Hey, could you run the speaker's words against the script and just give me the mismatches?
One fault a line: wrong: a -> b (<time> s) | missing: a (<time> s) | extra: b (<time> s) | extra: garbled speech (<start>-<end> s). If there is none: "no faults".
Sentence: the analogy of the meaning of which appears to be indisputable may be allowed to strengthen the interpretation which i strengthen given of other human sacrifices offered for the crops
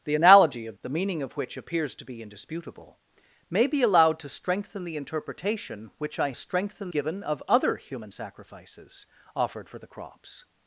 no faults